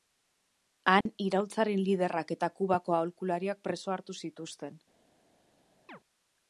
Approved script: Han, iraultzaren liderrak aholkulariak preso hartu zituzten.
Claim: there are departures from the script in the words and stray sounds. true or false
true